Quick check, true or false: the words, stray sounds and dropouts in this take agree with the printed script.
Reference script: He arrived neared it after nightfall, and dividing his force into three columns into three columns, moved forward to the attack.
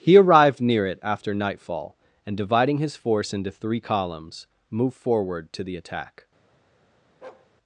false